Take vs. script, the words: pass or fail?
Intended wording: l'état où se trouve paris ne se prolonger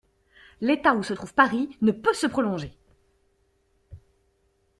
fail